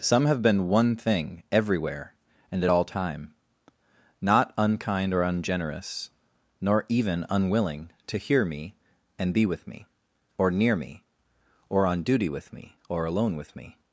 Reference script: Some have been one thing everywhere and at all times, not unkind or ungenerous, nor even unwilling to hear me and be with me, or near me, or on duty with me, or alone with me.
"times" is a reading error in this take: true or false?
true